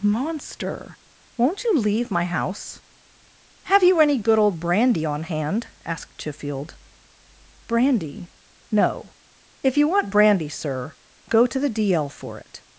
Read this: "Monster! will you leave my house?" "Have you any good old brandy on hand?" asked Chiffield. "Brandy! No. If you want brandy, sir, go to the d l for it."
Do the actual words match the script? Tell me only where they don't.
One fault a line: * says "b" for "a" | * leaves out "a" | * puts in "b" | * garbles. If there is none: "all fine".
* says "won't" for "will"